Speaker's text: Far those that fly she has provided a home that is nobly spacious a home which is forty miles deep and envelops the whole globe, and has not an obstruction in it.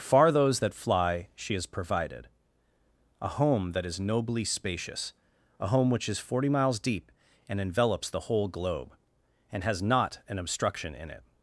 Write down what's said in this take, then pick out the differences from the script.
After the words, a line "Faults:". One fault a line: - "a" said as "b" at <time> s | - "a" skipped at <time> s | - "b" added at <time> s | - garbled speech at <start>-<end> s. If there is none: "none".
Far those that fly she has provided a home that is nobly spacious a home which is forty miles deep and envelops the whole globe, and has not an obstruction in it.
Faults:
none